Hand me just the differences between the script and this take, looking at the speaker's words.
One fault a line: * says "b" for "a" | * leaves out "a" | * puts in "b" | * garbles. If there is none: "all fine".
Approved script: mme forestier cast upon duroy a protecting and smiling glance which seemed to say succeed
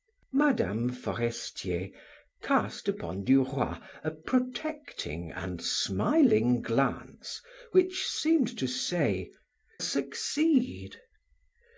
all fine